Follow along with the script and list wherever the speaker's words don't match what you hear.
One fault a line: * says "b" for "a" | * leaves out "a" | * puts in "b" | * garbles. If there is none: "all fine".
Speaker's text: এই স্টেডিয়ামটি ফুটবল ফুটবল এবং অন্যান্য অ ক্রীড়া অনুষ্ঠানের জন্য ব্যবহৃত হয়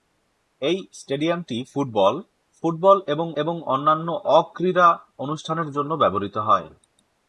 * puts in "এবং"